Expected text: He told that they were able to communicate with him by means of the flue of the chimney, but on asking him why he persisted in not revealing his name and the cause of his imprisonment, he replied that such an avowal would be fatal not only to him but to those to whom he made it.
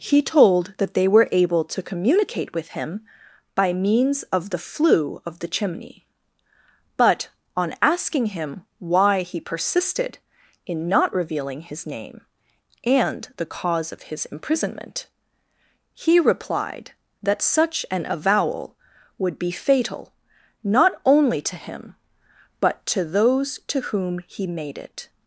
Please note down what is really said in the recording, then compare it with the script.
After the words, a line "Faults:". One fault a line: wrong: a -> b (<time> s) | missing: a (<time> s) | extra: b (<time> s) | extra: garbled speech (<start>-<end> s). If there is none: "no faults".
He told that they were able to communicate with him by means of the flue of the chimney, but on asking him why he persisted in not revealing his name and the cause of his imprisonment, he replied that such an avowal would be fatal not only to him but to those to whom he made it.
Faults:
no faults